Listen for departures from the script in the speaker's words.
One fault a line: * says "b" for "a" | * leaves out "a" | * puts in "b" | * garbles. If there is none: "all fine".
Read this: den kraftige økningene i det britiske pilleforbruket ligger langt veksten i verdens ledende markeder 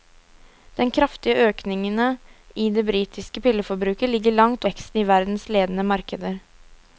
all fine